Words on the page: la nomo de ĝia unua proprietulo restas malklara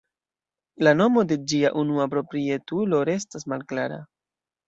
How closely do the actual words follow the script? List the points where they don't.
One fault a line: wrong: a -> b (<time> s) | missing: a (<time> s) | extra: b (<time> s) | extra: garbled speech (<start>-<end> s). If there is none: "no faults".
no faults